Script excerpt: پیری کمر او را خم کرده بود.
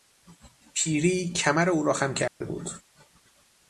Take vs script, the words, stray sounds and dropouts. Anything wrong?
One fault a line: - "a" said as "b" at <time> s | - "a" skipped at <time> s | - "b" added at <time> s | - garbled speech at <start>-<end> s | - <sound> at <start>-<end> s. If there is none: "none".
- dropout at 2.3-2.4 s